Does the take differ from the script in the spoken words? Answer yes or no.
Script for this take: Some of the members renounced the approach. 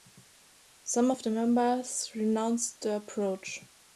no